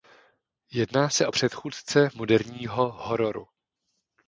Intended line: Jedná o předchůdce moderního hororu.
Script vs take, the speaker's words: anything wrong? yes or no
yes